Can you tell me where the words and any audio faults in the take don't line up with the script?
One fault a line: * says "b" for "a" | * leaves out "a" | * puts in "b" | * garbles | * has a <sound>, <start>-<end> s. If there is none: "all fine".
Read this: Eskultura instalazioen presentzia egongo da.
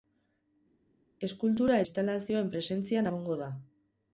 all fine